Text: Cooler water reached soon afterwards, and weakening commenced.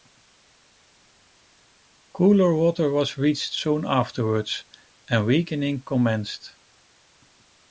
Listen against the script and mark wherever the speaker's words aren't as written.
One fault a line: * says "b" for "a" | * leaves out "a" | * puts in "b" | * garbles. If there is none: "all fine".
* puts in "was"